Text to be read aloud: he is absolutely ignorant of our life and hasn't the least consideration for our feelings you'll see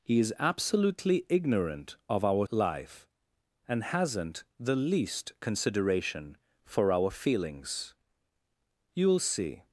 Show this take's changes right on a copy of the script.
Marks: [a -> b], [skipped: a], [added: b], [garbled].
he is absolutely ignorant of our life and hasn't the least consideration for our feelings you'll see